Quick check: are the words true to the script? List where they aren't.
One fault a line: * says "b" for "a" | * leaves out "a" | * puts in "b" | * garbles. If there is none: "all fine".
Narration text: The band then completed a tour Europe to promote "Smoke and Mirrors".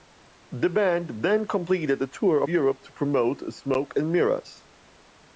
all fine